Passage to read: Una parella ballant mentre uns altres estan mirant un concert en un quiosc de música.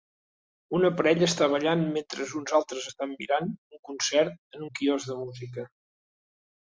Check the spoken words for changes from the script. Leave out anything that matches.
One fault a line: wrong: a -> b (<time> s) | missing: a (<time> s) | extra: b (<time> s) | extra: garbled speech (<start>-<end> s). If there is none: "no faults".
extra: està (1.3 s)